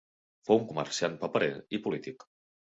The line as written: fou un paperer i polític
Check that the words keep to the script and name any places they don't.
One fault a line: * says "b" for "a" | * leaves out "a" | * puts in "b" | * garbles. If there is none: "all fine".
* puts in "comerciant"